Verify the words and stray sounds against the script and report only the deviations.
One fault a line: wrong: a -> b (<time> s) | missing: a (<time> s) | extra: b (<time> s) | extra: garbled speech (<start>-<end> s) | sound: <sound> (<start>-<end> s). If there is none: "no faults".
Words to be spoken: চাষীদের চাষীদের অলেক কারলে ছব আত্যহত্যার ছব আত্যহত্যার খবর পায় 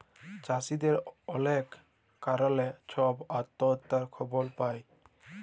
missing: চাষীদের (0.9 s)
missing: ছব আত্যহত্যার (4.0 s)